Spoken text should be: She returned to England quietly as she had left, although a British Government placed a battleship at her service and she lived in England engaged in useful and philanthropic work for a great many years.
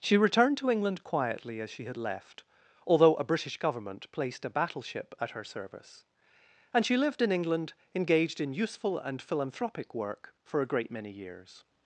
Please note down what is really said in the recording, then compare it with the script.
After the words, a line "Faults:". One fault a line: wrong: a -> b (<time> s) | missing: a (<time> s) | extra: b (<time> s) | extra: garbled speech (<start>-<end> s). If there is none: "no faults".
She returned to England quietly as she had left, although a British Government placed a battleship at her service and she lived in England engaged in useful and philanthropic work for a great many years.
Faults:
no faults